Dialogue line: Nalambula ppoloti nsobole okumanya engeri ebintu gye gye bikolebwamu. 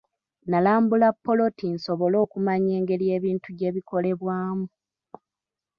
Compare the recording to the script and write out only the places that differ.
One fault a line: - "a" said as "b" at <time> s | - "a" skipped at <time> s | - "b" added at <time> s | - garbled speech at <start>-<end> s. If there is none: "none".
- "gye" skipped at 3.7 s